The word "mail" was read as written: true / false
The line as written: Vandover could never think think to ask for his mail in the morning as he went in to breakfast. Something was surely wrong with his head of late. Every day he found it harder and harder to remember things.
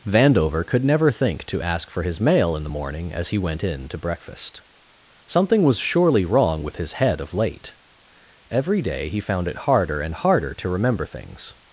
true